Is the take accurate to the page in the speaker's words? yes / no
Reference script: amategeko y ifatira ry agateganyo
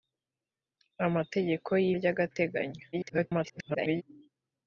no